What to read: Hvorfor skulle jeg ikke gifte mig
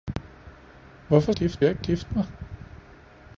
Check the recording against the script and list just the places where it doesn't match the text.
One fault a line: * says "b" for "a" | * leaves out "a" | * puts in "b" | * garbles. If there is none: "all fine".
* says "gifte" for "skulle"